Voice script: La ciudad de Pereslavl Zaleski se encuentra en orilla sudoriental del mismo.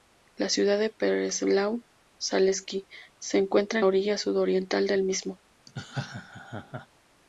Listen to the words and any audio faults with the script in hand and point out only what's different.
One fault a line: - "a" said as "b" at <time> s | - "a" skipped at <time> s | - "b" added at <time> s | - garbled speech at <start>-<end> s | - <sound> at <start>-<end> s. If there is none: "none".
- laugh at 5.7-6.9 s